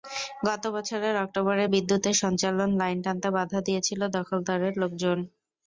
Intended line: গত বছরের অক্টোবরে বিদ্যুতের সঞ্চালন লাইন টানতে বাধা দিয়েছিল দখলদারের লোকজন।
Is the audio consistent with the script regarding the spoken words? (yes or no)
yes